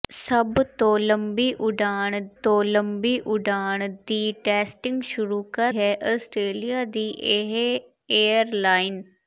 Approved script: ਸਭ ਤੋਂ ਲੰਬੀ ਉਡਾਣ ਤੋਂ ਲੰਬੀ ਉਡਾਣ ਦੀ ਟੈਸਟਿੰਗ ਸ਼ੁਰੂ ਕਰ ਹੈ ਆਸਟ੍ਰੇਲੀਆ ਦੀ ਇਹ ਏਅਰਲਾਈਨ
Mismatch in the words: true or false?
false